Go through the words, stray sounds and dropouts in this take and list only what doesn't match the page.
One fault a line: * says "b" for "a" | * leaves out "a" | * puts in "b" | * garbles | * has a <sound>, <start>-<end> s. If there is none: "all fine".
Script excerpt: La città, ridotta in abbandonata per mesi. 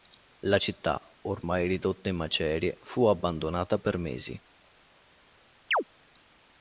* puts in "ormai"
* puts in "macerie fu"
* has a chirp, 5.7-5.8 s